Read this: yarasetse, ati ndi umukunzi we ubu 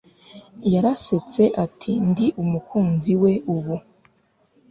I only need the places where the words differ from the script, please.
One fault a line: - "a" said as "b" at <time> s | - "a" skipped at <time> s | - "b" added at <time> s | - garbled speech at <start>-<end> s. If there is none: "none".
none